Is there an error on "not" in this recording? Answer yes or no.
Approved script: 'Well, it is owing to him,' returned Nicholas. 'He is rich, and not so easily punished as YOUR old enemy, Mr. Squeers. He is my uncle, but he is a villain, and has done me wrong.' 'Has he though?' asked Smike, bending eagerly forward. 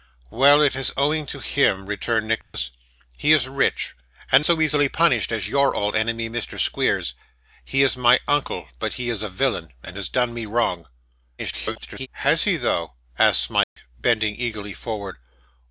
yes